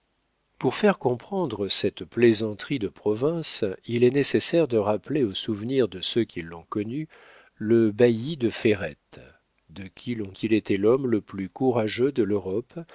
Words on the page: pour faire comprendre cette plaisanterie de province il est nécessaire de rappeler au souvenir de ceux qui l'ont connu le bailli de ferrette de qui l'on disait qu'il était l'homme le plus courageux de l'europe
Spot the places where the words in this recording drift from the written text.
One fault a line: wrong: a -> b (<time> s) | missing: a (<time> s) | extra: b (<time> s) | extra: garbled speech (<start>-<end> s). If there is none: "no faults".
missing: disait (10.3 s)